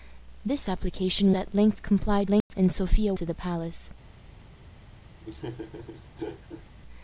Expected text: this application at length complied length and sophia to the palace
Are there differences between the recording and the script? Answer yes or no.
no